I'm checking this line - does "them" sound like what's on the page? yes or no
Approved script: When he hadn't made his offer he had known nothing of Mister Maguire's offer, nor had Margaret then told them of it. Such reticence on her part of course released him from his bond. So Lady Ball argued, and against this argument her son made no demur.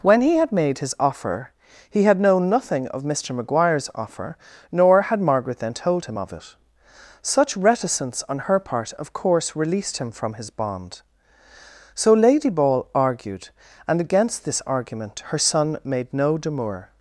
no